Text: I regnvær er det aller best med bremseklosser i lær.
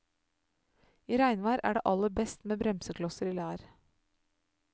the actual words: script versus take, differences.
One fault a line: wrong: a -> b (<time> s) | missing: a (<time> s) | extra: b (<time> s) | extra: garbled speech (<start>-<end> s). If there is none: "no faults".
no faults